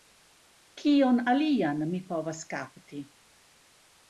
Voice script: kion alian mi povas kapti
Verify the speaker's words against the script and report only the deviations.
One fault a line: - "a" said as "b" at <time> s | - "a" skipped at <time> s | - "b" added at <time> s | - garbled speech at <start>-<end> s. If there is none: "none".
none